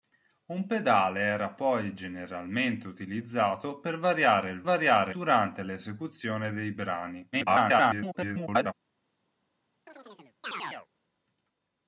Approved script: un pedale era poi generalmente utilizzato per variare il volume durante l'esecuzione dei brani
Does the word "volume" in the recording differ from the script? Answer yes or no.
yes